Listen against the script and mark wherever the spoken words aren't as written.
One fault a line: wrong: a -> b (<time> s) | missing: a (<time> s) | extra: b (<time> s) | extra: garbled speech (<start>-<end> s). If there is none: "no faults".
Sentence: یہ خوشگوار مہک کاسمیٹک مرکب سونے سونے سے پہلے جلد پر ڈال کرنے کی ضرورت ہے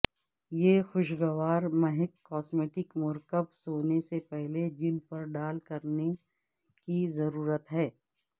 missing: سونے (4.0 s)